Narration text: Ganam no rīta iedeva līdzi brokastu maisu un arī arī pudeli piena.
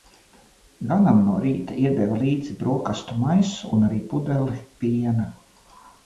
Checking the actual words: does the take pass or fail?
fail